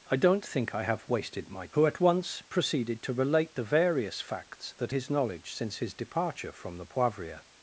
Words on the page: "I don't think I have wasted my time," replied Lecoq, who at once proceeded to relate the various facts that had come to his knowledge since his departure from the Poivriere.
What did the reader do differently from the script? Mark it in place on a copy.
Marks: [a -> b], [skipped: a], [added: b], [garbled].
"I don't think I have wasted my [skipped: time," replied Lecoq,] who at once proceeded to relate the various facts that [skipped: had come to] his knowledge since his departure from the Poivriere.